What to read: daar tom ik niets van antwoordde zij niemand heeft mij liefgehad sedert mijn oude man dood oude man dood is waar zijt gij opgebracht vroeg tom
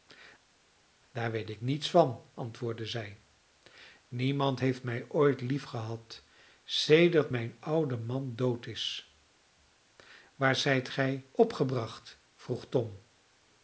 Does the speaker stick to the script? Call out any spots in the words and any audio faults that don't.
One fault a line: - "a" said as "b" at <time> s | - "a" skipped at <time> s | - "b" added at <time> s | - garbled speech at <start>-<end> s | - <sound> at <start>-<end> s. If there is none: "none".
- "tom" said as "weet" at 1.3 s
- "ooit" added at 5.1 s
- "oude man dood" skipped at 8.7 s